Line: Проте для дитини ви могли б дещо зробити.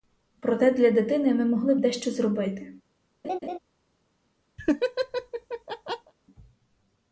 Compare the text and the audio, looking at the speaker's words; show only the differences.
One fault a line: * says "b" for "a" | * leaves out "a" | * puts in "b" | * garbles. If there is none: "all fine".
* says "ми" for "ви"